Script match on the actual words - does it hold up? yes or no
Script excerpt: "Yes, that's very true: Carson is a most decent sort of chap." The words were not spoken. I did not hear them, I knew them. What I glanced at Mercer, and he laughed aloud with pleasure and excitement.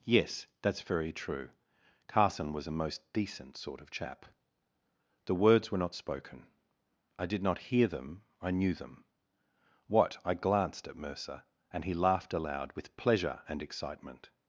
no